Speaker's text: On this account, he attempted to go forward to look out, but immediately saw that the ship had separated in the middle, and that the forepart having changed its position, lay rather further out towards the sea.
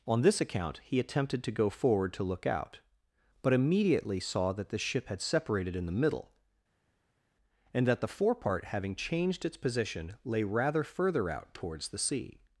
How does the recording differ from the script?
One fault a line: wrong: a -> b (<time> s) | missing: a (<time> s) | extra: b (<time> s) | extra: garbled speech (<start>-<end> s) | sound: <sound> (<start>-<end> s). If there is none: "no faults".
no faults